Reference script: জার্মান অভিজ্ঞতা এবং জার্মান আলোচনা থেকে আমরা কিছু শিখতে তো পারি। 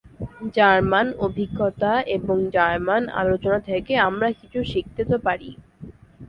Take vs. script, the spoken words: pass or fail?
pass